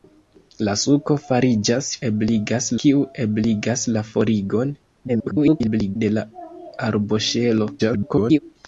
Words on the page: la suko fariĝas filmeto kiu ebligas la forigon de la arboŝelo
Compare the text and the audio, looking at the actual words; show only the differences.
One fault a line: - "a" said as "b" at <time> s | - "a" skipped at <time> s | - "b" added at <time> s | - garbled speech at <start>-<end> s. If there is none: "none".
- "filmeto" said as "ebligas" at 2.1 s
- garbled speech at 5.1-6.0 s
- garbled speech at 7.8-8.4 s